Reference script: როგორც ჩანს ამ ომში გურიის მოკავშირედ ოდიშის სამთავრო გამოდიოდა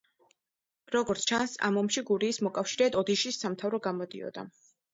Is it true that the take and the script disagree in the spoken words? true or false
false